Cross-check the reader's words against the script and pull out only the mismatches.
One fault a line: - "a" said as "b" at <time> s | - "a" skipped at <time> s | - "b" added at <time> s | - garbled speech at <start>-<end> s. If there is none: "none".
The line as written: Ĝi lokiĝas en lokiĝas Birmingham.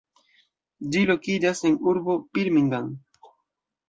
- "lokiĝas" said as "urbo" at 1.9 s